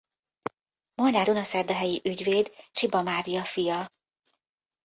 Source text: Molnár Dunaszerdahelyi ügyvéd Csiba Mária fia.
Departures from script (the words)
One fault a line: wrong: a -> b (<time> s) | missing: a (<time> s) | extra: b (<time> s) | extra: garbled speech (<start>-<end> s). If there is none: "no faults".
no faults